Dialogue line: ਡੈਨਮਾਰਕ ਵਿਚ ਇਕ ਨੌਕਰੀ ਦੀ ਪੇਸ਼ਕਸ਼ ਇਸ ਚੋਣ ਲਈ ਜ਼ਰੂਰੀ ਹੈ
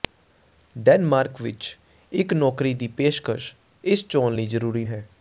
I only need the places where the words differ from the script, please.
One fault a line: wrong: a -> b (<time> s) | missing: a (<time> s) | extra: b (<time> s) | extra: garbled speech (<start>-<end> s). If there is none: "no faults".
no faults